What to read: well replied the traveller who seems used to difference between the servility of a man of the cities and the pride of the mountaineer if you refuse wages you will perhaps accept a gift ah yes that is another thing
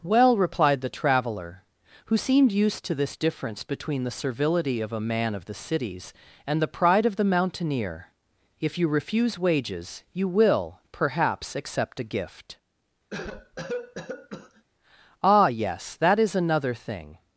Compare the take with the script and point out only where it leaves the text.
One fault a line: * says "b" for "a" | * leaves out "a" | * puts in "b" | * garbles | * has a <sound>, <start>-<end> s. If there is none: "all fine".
* says "seemed" for "seems"
* puts in "this"
* has a cough, 13.1-14.6 s